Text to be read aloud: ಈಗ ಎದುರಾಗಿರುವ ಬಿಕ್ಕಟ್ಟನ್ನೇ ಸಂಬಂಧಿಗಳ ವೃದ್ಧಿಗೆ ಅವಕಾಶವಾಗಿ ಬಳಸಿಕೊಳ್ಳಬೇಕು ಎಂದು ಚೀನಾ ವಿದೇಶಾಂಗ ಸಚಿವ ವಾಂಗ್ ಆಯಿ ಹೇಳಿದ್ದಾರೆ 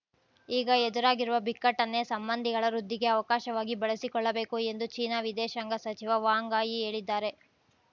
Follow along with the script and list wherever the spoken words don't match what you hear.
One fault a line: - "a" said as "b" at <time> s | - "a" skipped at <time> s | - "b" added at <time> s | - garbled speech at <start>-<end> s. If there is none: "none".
none